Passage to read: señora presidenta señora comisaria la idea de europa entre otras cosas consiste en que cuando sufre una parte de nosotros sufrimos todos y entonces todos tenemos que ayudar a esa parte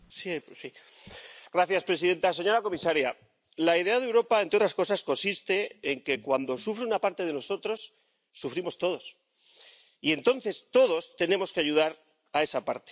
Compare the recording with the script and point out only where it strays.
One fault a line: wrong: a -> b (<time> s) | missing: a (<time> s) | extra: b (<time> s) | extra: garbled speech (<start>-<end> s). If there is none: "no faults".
no faults